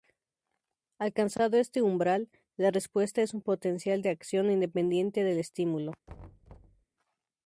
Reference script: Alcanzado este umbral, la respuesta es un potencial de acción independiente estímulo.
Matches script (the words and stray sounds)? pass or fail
fail